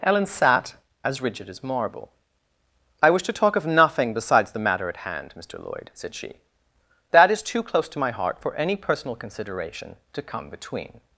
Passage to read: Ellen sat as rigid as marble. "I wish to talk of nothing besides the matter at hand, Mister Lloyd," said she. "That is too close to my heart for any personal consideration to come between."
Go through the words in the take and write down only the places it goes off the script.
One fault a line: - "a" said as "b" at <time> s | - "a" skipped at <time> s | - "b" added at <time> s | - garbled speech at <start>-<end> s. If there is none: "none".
none